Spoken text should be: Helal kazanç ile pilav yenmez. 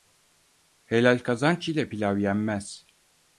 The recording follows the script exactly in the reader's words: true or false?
true